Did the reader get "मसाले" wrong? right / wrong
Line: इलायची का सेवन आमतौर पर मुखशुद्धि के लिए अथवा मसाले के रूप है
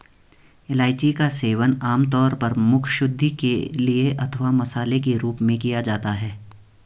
right